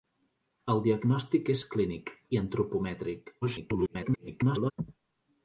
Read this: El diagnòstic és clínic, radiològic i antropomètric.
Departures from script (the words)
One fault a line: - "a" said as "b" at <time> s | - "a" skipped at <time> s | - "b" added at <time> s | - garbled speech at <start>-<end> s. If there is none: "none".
- "radiològic" skipped at 2.1 s
- garbled speech at 3.4-4.7 s